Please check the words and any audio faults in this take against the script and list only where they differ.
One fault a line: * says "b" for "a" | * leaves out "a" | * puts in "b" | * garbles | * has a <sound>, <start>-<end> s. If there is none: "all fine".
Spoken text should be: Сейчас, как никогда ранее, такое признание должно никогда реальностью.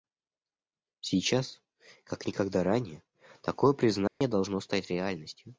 * has a dropout, 4.1-4.2 s
* says "стать" for "никогда"